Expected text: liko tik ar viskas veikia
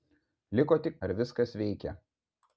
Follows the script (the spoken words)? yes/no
yes